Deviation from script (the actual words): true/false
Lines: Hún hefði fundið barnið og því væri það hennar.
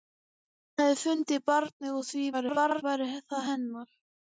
true